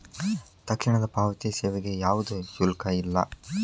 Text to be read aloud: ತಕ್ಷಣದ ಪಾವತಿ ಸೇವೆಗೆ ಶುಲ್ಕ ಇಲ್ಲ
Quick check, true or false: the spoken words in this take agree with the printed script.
false